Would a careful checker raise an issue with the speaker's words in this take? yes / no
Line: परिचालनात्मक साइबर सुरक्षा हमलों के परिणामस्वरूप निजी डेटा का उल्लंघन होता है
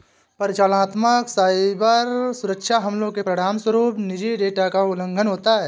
no